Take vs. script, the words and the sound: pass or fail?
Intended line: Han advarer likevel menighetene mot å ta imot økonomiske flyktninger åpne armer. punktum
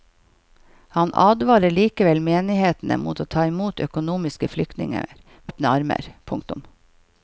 pass